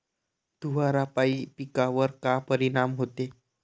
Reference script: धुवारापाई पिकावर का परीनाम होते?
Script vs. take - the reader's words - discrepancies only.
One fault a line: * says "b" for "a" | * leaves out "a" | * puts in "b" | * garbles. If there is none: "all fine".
all fine